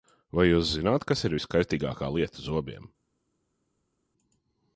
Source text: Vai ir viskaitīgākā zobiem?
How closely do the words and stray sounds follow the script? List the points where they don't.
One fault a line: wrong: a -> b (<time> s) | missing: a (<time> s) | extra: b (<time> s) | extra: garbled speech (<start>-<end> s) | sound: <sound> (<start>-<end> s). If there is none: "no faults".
extra: jūs zināt kas (0.5 s)
extra: lieta (2.2 s)